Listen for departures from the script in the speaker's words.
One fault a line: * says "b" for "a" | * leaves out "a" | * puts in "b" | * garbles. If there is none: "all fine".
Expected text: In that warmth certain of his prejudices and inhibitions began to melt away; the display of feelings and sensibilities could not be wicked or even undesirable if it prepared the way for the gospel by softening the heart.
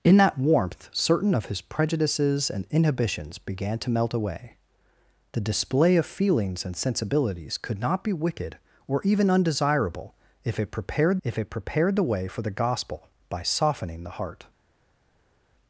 * puts in "if it prepared"